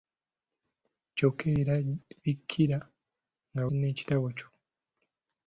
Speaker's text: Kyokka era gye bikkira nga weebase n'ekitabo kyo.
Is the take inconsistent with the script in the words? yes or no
yes